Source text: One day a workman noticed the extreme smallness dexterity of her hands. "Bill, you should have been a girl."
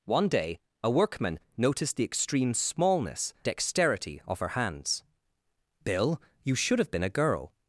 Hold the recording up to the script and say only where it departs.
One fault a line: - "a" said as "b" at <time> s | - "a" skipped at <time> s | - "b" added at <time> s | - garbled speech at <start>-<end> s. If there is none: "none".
none